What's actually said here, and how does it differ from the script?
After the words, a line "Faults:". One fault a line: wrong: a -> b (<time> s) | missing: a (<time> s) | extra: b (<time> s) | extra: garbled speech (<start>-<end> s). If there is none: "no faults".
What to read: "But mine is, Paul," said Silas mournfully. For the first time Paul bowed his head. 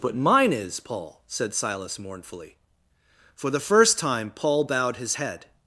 "But mine is, Paul," said Silas mournfully. For the first time Paul bowed his head.
Faults:
no faults